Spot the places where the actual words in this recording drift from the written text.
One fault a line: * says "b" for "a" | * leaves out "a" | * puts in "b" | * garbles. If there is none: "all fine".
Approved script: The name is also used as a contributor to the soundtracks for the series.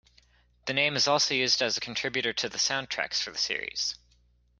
all fine